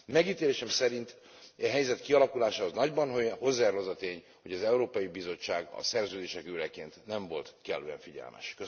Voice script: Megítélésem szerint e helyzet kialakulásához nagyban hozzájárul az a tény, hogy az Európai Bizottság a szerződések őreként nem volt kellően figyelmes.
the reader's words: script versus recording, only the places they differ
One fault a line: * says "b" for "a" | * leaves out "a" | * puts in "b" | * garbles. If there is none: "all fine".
all fine